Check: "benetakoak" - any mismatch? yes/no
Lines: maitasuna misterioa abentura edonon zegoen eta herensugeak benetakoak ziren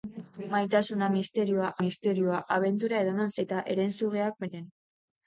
yes